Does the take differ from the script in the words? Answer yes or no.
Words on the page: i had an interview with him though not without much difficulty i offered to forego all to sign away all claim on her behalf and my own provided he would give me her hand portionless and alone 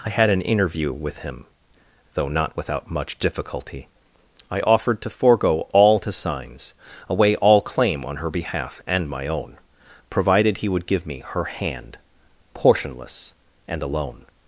yes